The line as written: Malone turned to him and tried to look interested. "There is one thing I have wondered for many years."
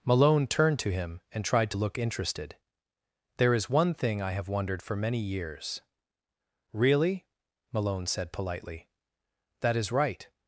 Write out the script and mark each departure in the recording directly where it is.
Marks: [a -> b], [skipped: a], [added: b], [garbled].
Malone turned to him and tried to look interested. "There is one thing I have wondered for many years." [added: Really Malone said politely That is right]